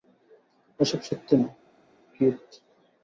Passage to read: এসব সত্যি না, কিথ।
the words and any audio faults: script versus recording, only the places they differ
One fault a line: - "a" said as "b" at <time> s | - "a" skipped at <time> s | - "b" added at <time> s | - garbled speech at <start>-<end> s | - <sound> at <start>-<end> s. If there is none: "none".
none